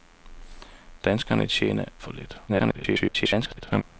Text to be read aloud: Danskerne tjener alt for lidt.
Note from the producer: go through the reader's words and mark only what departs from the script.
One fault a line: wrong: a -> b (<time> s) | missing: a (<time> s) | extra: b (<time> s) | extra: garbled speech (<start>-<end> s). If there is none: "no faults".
missing: alt (1.9 s)
extra: garbled speech (2.5-3.8 s)